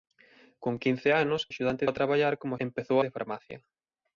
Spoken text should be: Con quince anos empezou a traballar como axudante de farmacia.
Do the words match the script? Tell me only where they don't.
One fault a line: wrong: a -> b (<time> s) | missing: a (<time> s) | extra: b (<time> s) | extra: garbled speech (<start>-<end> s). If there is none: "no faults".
wrong: empezou -> axudante (1.5 s)
wrong: axudante -> empezou (2.7 s)